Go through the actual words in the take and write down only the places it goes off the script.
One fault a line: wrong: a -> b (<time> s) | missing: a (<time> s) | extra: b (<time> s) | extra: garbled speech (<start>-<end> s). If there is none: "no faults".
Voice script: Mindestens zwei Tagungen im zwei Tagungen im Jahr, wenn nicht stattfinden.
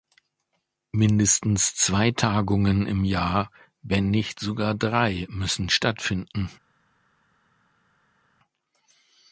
wrong: zwei Tagungen im Jahr wenn nicht -> Jahr wenn nicht sogar drei müssen (3.0 s)